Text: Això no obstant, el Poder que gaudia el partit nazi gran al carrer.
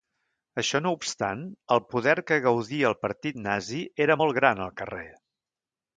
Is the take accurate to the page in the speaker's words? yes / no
no